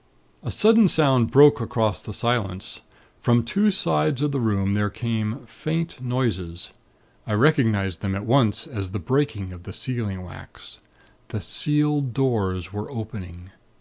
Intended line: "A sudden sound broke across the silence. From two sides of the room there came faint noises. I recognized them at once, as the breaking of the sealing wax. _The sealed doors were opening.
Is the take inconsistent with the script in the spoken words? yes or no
no